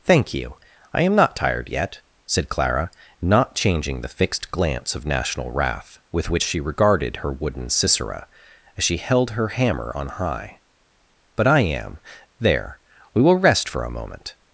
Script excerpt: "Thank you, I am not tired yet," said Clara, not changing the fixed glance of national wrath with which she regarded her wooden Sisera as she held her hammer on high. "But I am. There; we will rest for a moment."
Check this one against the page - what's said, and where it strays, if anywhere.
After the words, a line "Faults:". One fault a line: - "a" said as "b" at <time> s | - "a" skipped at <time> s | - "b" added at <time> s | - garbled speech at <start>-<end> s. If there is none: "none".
"Thank you, I am not tired yet," said Clara, not changing the fixed glance of national wrath with which she regarded her wooden Sisera as she held her hammer on high. "But I am. There; we will rest for a moment."
Faults:
none